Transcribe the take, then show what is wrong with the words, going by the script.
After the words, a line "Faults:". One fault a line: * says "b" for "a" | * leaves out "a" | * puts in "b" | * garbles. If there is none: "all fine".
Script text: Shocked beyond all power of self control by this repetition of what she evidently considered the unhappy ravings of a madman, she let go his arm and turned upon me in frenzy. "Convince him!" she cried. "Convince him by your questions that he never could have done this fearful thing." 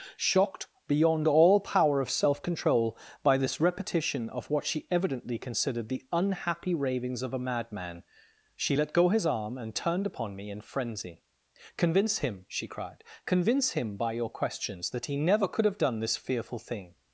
Shocked beyond all power of self control by this repetition of what she evidently considered the unhappy ravings of a madman, she let go his arm and turned upon me in frenzy. "Convince him!" she cried. "Convince him by your questions that he never could have done this fearful thing."
Faults:
all fine